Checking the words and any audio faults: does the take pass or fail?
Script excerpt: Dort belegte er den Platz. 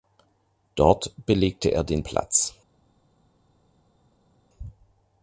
pass